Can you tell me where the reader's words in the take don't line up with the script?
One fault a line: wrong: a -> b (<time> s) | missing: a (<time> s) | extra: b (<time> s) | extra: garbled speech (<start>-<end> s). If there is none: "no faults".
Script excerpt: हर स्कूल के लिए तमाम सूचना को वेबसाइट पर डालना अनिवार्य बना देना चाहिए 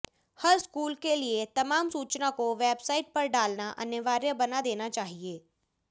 no faults